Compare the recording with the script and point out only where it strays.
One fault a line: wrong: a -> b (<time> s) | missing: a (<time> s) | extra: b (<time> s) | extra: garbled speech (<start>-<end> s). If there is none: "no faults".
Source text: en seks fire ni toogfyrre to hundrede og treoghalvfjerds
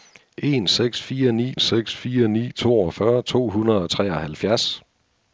extra: seks fire ni (1.6 s)